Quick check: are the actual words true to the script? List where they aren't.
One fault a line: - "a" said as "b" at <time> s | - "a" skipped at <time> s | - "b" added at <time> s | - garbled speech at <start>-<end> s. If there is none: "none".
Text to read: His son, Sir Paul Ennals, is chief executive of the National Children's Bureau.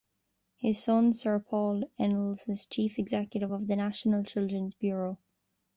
none